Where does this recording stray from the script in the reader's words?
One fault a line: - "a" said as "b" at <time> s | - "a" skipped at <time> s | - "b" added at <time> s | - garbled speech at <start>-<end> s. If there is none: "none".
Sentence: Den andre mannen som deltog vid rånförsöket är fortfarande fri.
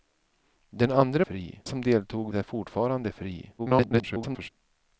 - "mannen" said as "fri" at 1.2 s
- "vid rånförsöket" skipped at 2.3 s
- garbled speech at 3.6-4.5 s